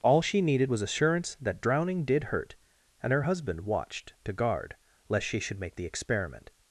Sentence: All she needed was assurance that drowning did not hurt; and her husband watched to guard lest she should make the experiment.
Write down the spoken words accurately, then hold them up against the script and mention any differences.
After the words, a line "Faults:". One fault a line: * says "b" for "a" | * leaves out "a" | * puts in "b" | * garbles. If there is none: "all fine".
All she needed was assurance that drowning did hurt; and her husband watched to guard lest she should make the experiment.
Faults:
* leaves out "not"